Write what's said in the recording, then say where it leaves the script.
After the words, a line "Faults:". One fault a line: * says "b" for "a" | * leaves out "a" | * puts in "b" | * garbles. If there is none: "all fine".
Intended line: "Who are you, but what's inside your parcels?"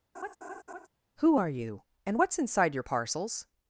"Who are you, and what's inside your parcels?"
Faults:
* says "and" for "but"